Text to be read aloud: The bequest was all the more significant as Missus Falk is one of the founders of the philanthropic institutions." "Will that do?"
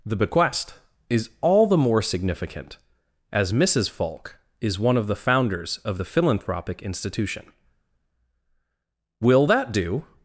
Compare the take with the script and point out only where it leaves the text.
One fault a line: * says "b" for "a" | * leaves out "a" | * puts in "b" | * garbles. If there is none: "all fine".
* says "is" for "was"
* says "institution" for "institutions"